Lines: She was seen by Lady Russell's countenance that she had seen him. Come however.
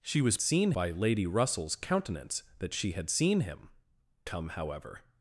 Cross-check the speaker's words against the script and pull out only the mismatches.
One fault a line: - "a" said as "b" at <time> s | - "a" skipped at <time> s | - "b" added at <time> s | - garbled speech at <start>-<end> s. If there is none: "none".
none